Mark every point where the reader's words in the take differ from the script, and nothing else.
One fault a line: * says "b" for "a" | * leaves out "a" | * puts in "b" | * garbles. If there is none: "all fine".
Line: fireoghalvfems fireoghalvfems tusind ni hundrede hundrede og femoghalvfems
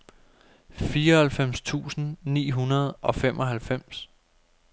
* leaves out "fireoghalvfems"
* leaves out "hundrede"